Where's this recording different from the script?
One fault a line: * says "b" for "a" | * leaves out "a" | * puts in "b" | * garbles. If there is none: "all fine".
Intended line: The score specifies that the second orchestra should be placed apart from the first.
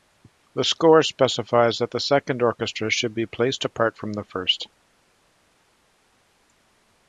all fine